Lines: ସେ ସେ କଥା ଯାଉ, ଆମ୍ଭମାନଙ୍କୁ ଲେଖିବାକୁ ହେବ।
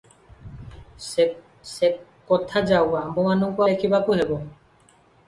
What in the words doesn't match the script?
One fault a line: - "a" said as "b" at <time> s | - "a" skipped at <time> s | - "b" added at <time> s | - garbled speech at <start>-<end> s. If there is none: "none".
none